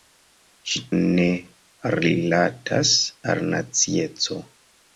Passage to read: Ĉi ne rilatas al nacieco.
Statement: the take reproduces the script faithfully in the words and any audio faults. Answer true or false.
true